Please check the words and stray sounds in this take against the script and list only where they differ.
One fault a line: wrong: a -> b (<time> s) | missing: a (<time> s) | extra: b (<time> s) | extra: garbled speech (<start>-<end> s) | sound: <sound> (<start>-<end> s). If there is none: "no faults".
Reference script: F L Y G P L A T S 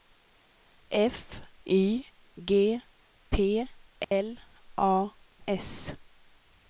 missing: L (1.4 s)
sound: dropout (4.0-4.1 s)
missing: T (5.1 s)